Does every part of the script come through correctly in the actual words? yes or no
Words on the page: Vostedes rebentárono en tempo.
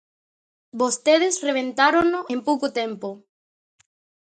no